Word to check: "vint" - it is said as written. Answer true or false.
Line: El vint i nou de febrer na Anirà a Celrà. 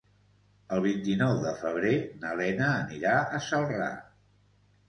true